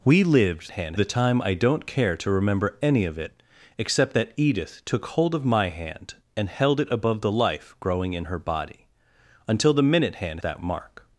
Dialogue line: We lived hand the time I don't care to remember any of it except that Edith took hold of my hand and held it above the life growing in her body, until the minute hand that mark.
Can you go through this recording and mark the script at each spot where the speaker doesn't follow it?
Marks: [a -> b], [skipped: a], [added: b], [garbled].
We lived hand the time I don't care to remember any of it except that Edith took hold of my hand and held it above the life growing in her body, until the minute hand that mark.